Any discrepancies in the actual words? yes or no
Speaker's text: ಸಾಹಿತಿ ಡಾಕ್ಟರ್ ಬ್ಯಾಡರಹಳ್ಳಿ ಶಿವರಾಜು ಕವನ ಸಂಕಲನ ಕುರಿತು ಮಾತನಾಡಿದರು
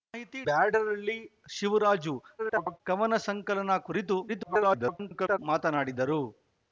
yes